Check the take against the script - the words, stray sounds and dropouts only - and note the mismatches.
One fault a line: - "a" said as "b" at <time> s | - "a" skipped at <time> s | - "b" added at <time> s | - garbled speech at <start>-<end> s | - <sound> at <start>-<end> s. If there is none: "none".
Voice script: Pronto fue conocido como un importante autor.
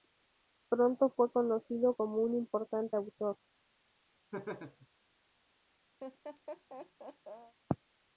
- laugh at 4.3-4.9 s
- laugh at 6.0-7.5 s